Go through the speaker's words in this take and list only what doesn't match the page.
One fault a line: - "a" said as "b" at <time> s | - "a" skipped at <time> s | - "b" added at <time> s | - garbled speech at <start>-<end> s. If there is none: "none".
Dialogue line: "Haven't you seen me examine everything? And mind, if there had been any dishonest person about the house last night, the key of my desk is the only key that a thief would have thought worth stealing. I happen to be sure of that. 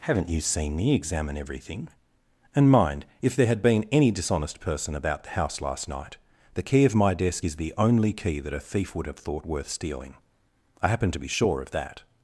none